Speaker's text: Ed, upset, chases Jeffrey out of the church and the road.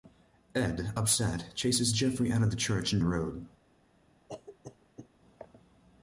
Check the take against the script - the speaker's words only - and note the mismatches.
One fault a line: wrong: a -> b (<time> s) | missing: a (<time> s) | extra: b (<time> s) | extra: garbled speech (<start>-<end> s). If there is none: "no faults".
no faults